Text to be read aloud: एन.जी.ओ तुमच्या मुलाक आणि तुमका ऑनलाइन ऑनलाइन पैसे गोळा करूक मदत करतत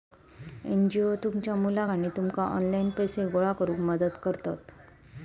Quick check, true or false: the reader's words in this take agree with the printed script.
false